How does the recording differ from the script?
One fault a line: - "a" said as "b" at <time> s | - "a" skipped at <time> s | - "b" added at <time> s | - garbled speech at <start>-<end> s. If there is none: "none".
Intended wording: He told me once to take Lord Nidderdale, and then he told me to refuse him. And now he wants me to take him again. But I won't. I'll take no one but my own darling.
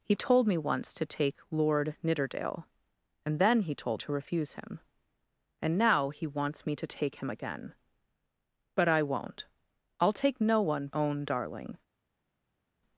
- "me" skipped at 4.0 s
- "but my" skipped at 10.9 s